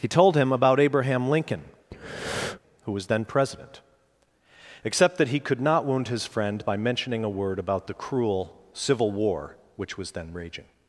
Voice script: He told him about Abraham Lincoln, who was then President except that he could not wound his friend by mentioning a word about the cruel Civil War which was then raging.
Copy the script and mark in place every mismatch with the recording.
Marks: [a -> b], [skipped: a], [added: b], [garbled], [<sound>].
He told him about Abraham Lincoln, [breath] who was then President except that he could not wound his friend by mentioning a word about the cruel Civil War which was then raging.